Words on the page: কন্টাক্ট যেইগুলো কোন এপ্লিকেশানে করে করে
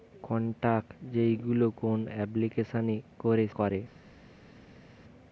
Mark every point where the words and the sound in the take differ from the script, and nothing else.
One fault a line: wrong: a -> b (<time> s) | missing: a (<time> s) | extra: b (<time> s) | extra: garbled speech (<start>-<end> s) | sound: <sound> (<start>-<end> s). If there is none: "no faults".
no faults